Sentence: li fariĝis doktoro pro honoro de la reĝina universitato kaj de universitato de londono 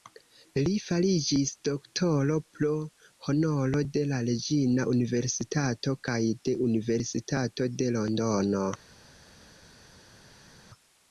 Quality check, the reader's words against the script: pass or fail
pass